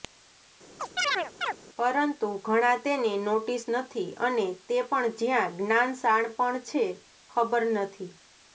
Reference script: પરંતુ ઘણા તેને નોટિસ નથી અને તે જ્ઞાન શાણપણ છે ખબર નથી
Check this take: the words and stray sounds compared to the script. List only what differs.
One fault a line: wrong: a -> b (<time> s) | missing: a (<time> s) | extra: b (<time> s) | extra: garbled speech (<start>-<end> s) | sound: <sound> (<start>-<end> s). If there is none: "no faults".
sound: chirp (0.8-1.6 s)
extra: પણ જ્યાં (4.9 s)